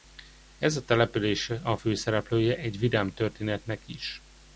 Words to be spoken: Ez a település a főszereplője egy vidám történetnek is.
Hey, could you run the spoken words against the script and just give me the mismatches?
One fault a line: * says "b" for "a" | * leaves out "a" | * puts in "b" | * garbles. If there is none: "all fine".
all fine